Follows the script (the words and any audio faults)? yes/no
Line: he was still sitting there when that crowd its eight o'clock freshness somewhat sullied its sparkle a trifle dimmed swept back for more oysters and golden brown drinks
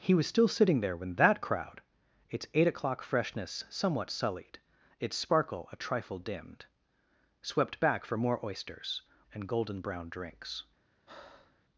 no